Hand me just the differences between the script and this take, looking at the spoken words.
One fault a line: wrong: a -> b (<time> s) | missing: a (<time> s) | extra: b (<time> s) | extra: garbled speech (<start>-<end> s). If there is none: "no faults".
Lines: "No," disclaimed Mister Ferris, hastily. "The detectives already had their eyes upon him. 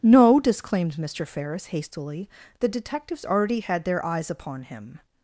no faults